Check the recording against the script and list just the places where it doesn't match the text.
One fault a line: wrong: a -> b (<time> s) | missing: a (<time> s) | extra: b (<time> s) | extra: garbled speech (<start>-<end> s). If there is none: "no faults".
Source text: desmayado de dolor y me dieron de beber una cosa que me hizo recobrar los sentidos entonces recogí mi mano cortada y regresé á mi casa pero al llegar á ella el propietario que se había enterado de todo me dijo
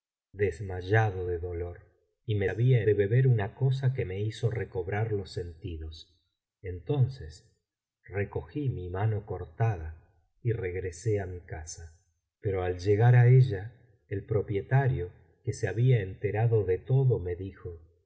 wrong: dieron -> había (2.5 s)